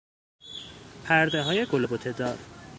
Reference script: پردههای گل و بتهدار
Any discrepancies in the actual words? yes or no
no